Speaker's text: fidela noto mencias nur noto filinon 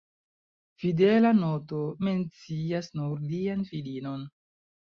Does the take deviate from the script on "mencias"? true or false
false